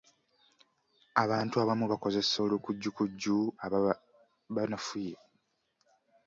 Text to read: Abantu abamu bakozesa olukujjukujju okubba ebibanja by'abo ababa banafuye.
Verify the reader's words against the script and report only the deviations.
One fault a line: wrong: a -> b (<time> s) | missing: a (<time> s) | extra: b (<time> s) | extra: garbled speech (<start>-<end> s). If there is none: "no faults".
missing: okubba ebibanja by'abo (3.4 s)